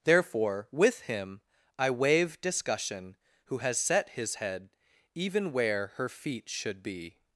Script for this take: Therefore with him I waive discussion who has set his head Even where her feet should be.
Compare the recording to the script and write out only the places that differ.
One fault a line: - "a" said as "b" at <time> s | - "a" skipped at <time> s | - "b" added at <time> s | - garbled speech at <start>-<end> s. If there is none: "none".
none